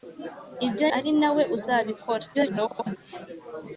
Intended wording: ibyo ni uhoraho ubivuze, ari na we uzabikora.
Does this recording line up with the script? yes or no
no